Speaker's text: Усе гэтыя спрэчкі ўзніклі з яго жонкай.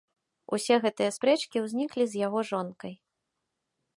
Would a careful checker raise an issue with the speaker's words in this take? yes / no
no